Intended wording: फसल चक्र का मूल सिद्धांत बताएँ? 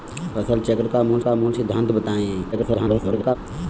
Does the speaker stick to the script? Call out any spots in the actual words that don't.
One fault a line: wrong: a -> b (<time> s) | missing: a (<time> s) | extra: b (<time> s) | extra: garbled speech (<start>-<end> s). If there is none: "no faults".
extra: का मूल (1.2 s)
extra: garbled speech (2.5-3.4 s)